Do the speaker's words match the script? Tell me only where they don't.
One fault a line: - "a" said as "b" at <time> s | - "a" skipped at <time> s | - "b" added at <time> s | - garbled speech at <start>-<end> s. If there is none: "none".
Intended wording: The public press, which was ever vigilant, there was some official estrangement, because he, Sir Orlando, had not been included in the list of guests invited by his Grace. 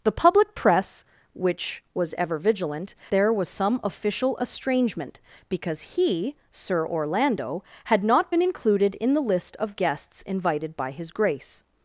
none